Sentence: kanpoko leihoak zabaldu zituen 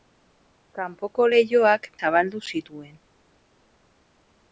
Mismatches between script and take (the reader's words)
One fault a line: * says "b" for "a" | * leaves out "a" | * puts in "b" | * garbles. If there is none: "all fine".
all fine